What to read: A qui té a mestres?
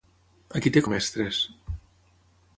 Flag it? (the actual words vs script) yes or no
no